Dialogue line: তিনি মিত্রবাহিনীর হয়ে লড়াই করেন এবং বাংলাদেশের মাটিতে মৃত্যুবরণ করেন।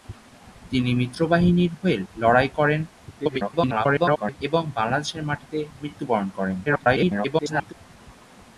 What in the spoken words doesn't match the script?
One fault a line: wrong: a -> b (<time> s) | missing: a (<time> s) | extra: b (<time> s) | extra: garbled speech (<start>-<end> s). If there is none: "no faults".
extra: garbled speech (3.1-4.4 s)
extra: garbled speech (6.7-7.7 s)